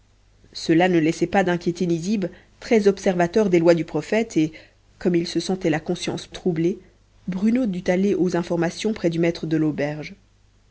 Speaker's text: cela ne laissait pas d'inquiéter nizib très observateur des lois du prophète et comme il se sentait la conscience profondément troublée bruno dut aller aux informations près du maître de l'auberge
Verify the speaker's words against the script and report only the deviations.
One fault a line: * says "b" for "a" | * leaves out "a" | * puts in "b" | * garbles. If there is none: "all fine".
* leaves out "profondément"